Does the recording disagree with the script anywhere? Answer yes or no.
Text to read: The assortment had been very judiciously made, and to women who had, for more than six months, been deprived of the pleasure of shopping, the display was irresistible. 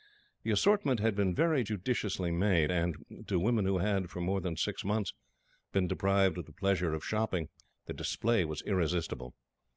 no